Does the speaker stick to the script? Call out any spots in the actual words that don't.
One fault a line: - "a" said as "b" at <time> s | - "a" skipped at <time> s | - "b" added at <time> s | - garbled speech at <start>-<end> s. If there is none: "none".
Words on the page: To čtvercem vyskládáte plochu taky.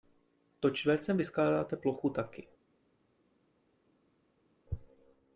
none